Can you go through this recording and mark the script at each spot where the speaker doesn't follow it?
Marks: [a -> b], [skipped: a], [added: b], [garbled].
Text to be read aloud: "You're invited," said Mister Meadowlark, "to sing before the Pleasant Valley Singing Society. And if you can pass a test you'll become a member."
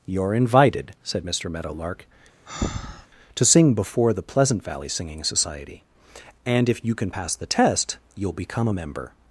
"You're invited," said Mister Meadowlark, "to sing before the Pleasant Valley Singing Society. And if you can pass [a -> the] test you'll become a member."